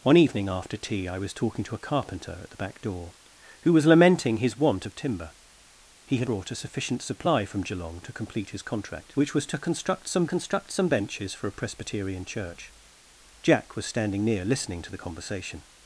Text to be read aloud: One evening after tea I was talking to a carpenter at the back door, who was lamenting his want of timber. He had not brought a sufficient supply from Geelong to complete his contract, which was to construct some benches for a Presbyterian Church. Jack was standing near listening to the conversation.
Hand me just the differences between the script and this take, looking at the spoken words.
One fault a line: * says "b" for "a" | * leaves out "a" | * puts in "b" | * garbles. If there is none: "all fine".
* leaves out "not"
* puts in "construct some"